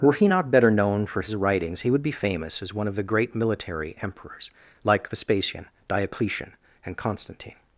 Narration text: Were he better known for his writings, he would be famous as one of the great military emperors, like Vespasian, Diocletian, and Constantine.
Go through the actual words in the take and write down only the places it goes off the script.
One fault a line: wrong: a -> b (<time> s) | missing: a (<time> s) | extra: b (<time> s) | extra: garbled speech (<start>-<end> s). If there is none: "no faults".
extra: not (0.2 s)